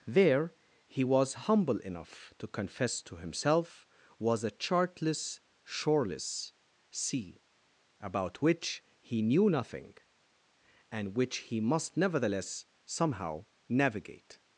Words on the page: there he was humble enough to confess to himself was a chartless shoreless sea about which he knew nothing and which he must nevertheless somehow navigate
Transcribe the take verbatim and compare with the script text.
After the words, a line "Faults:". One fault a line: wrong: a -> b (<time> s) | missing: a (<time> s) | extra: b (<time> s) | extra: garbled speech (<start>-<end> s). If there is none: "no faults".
there he was humble enough to confess to himself was a chartless shoreless sea about which he knew nothing and which he must nevertheless somehow navigate
Faults:
no faults